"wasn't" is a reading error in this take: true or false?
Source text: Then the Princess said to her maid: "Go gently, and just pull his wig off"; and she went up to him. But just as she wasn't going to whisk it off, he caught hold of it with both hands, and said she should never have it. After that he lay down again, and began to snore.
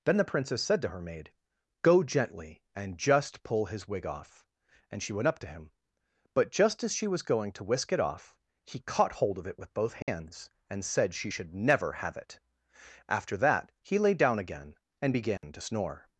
true